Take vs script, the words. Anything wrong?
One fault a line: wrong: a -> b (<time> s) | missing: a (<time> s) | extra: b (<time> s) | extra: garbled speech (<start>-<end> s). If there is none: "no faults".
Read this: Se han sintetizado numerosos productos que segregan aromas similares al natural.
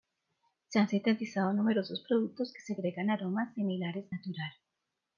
missing: al (4.1 s)